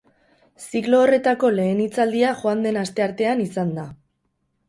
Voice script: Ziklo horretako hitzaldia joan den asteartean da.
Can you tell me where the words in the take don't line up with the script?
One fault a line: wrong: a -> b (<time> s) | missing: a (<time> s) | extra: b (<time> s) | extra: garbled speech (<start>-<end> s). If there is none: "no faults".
extra: lehen (1.6 s)
extra: izan (3.5 s)